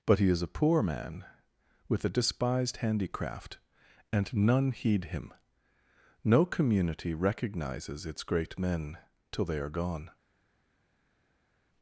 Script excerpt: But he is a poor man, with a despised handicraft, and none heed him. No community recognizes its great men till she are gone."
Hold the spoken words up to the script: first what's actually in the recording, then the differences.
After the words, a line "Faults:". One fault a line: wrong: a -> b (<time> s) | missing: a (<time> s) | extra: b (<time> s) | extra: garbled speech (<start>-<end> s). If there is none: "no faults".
But he is a poor man, with a despised handicraft, and none heed him. No community recognizes its great men till they are gone."
Faults:
wrong: she -> they (9.4 s)